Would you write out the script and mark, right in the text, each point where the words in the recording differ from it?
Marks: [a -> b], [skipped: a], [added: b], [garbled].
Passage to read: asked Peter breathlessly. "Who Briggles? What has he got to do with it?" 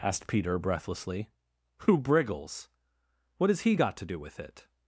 asked Peter breathlessly. "Who Briggles? What has he got to do with it?"